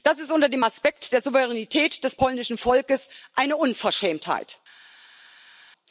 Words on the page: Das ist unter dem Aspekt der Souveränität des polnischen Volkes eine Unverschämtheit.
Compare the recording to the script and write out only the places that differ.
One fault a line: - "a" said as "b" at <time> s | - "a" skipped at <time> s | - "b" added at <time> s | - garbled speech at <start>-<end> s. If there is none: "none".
none